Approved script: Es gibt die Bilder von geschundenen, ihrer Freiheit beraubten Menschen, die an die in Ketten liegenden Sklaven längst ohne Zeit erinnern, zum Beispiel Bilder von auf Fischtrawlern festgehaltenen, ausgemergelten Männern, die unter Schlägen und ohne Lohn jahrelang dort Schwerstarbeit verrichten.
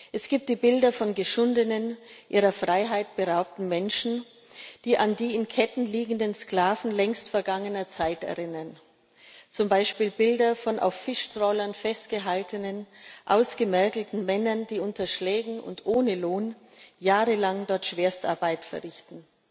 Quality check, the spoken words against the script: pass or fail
fail